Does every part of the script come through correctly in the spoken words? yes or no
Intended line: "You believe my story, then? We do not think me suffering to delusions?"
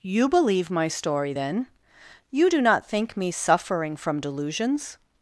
no